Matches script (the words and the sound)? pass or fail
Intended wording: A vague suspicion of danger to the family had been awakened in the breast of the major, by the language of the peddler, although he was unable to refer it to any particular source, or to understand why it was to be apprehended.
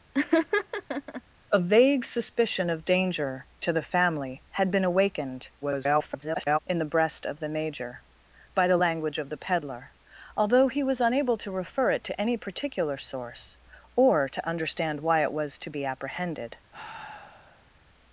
fail